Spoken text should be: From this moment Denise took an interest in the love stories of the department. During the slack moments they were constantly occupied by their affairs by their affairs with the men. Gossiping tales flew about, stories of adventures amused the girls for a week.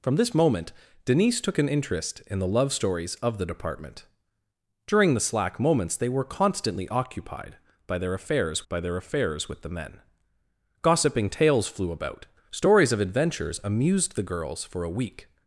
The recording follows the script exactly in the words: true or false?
true